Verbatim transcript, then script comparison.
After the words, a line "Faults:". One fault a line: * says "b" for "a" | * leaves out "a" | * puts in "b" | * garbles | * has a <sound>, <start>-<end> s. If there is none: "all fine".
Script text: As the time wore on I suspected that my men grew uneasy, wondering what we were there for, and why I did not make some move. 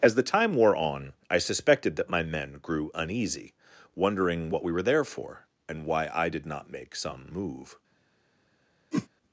As the time wore on I suspected that my men grew uneasy, wondering what we were there for, and why I did not make some move.
Faults:
* has a whoosh, 8.9-9.1 s